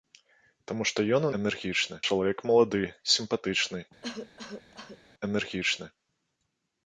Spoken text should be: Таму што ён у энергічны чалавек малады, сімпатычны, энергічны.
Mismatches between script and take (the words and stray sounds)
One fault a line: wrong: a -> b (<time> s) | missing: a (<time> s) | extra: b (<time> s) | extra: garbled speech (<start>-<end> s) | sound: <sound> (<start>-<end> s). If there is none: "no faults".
sound: cough (4.0-5.0 s)